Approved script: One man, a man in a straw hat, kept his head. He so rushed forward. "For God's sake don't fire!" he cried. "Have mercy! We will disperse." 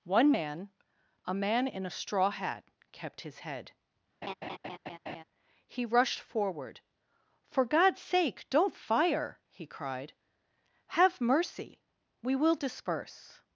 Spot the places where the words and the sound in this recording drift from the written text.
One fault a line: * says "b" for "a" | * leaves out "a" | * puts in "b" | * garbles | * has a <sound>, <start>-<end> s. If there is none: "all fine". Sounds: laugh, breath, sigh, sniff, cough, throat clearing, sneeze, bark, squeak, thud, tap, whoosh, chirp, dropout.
* has a laugh, 4.2-5.2 s
* leaves out "so"